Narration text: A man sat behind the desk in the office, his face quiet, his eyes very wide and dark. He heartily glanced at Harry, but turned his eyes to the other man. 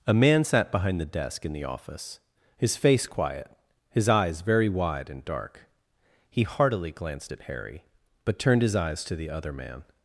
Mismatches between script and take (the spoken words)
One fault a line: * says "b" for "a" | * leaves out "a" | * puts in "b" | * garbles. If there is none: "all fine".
all fine